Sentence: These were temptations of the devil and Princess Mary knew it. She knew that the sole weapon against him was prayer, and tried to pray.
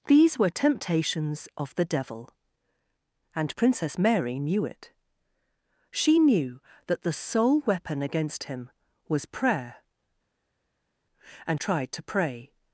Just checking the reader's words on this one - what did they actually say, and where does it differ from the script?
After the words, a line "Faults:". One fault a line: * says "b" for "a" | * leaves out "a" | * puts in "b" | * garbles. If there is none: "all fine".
These were temptations of the devil and Princess Mary knew it. She knew that the sole weapon against him was prayer, and tried to pray.
Faults:
all fine